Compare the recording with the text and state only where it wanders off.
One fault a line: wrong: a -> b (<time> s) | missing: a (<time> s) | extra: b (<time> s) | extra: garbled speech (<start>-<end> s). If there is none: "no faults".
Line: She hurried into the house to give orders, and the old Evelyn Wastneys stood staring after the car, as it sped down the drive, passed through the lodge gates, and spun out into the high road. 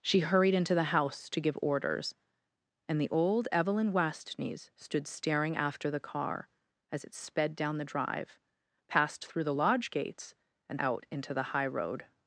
missing: spun (10.8 s)